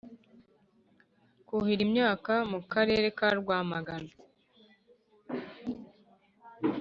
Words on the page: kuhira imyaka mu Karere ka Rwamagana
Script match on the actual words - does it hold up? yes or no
yes